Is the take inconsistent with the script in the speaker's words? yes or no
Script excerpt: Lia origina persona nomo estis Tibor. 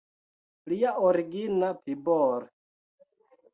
yes